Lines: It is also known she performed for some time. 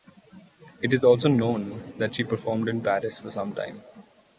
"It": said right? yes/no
yes